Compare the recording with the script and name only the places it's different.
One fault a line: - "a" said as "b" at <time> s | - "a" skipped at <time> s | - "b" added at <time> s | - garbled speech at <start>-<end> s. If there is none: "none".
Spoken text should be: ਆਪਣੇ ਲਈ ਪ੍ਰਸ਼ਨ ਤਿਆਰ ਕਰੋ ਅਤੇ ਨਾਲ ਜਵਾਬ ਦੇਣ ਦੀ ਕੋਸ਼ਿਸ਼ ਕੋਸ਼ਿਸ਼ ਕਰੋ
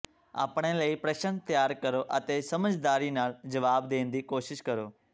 - "ਸਮਝਦਾਰੀ" added at 2.4 s
- "ਕੋਸ਼ਿਸ਼" skipped at 4.6 s